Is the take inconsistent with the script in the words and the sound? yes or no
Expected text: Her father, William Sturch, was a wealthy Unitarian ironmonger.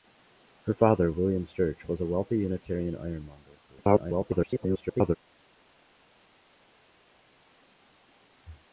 yes